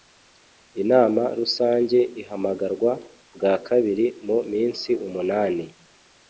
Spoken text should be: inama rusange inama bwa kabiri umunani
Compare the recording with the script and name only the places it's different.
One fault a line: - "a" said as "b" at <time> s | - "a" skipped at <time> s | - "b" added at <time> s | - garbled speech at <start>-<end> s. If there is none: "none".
- "inama" said as "ihamagarwa" at 2.2 s
- "mu minsi" added at 4.3 s